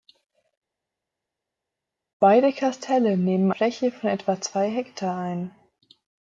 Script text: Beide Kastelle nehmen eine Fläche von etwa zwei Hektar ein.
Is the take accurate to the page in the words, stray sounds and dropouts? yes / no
no